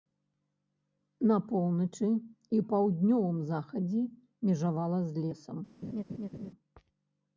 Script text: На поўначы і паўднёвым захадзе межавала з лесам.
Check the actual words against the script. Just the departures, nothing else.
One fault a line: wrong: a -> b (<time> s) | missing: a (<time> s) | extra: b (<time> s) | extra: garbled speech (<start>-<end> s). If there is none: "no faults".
no faults